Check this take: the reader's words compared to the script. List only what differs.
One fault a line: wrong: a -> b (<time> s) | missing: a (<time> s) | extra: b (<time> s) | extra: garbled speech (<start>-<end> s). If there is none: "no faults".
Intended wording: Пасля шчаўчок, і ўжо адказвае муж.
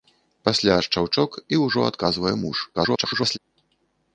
extra: garbled speech (2.7-3.4 s)